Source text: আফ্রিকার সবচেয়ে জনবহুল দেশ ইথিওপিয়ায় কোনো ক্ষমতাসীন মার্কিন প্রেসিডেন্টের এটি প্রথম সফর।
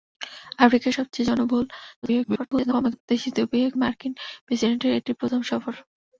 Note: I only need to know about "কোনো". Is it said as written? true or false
false